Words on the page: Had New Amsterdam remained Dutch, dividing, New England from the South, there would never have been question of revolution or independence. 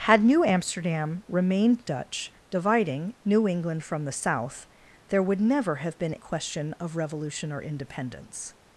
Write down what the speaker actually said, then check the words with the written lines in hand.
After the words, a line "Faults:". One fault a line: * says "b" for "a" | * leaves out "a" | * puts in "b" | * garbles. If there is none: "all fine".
Had New Amsterdam remained Dutch, dividing, New England from the South, there would never have been question of revolution or independence.
Faults:
all fine